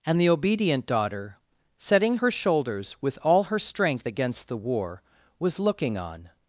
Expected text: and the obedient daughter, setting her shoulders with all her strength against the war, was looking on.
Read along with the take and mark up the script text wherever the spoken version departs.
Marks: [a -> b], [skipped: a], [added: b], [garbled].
and the obedient daughter, setting her shoulders with all her strength against the war, was looking on.